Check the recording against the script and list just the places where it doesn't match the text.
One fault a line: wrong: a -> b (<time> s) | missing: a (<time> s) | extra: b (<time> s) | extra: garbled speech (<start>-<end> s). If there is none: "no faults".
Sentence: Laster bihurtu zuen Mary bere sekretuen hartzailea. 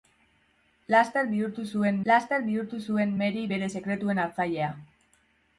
extra: laster bihurtu zuen (2.1 s)